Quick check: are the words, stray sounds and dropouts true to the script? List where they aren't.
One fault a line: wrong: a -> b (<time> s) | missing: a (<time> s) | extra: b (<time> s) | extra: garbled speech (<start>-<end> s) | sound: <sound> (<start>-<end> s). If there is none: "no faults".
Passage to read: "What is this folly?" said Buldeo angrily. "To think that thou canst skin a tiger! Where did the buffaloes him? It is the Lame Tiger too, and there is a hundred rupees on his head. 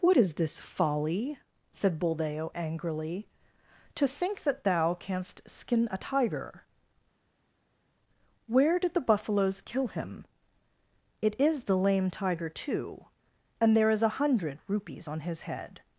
extra: kill (9.6 s)